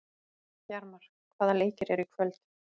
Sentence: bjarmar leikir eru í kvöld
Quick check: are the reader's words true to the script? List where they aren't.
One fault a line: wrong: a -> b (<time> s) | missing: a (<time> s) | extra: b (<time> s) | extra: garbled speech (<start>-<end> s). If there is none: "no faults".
extra: hvaða (1.4 s)